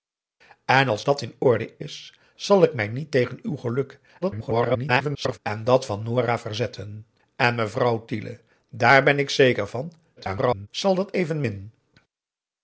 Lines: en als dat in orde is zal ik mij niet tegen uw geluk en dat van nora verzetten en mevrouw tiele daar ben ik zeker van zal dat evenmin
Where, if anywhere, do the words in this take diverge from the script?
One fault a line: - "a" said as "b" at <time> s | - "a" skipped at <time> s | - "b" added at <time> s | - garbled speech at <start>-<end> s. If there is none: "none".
- garbled speech at 4.2-5.4 s
- garbled speech at 10.2-10.7 s